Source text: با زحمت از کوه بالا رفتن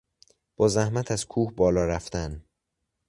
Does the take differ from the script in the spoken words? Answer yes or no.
no